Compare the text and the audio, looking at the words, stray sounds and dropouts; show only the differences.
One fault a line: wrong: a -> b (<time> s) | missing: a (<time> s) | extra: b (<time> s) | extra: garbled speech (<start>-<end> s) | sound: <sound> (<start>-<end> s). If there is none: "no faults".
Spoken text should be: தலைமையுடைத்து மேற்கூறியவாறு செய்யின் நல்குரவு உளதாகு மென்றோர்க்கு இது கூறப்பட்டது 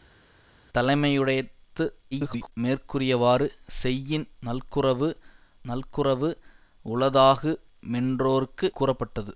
extra: garbled speech (2.1-2.5 s)
extra: நல்குரவு (5.7 s)
missing: இது (8.7 s)